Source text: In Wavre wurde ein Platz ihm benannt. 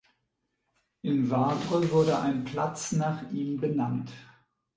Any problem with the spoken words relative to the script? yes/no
yes